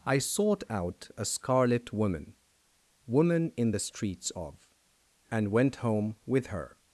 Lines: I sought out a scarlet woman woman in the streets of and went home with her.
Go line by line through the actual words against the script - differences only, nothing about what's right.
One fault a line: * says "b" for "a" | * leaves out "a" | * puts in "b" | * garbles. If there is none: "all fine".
all fine